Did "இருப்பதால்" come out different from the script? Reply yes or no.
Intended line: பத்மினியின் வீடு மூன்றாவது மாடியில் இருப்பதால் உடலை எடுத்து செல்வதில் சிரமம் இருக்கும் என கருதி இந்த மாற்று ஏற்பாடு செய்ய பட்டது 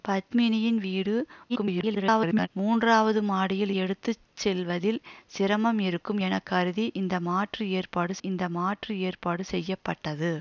yes